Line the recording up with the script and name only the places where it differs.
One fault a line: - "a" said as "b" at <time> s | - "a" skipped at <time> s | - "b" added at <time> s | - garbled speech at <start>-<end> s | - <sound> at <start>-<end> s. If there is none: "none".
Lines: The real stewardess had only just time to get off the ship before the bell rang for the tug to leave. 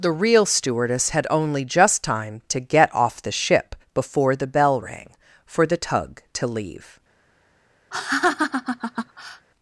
- laugh at 7.9-9.5 s